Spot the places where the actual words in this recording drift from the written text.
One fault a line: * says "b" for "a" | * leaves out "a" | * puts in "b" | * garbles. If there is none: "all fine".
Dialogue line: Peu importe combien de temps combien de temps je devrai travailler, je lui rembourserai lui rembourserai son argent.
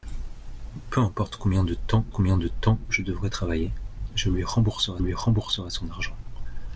all fine